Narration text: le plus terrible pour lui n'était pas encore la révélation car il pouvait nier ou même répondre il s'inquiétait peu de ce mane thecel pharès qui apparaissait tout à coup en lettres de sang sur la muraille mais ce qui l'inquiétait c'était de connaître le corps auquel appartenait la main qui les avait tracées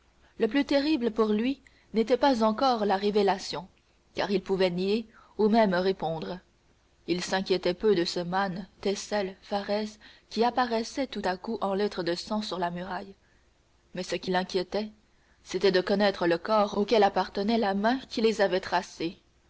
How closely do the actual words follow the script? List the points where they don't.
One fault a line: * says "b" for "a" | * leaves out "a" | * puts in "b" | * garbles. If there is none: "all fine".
all fine